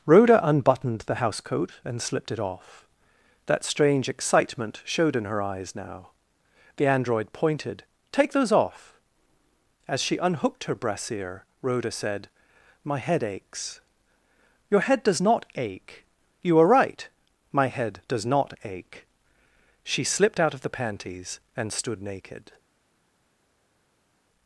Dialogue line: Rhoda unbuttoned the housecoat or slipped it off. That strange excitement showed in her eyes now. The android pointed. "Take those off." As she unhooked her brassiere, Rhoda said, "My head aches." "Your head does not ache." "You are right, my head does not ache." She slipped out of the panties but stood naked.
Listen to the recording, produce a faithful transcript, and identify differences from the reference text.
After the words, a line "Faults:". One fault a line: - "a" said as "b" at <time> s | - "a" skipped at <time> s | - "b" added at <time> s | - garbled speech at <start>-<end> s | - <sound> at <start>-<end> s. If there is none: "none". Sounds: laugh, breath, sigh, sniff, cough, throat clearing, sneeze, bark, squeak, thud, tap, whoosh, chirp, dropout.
Rhoda unbuttoned the housecoat and slipped it off. That strange excitement showed in her eyes now. The android pointed. "Take those off." As she unhooked her brassiere, Rhoda said, "My head aches." "Your head does not ache." "You are right, my head does not ache." She slipped out of the panties and stood naked.
Faults:
- "or" said as "and" at 1.9 s
- "but" said as "and" at 21.6 s